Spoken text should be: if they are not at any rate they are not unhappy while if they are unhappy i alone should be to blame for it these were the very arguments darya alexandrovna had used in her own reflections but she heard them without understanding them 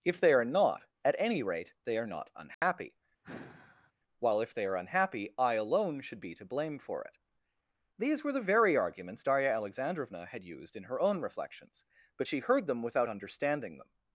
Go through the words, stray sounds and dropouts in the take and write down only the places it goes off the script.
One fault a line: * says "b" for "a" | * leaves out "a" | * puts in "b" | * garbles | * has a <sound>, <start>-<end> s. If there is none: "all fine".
* has a dropout, 2.5-2.6 s
* has a sigh, 3.2-3.9 s